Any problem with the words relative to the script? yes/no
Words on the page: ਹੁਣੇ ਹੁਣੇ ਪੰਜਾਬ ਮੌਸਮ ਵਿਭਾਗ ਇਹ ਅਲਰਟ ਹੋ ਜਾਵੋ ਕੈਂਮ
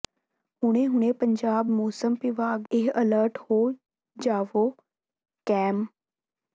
no